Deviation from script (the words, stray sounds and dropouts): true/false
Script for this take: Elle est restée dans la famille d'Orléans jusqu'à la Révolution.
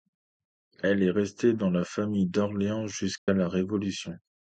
true